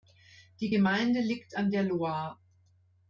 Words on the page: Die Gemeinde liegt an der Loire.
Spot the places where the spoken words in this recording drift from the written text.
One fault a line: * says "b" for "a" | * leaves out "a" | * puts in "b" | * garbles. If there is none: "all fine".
all fine